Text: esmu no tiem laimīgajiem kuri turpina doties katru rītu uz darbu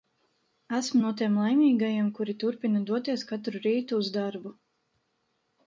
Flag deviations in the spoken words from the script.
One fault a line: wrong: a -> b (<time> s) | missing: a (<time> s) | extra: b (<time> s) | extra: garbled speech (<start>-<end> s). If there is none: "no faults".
no faults